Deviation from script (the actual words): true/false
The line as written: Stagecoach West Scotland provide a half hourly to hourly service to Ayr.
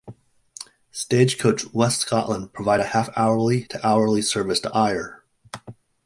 false